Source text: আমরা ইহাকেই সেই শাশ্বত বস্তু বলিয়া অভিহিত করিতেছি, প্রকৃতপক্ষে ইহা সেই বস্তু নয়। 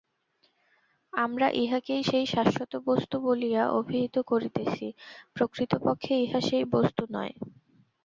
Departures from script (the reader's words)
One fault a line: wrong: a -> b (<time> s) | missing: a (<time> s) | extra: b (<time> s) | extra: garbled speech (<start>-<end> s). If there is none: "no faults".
no faults